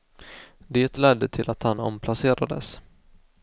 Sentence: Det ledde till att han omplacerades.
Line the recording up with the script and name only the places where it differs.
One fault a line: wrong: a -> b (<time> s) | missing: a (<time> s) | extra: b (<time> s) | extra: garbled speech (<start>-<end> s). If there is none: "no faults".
no faults